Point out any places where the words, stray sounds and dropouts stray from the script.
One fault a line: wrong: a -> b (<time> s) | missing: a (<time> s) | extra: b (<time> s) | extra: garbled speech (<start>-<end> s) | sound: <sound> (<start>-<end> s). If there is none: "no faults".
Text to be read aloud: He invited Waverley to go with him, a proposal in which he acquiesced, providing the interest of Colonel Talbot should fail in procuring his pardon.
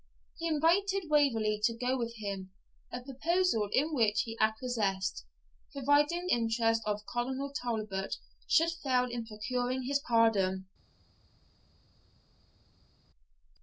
missing: the (6.3 s)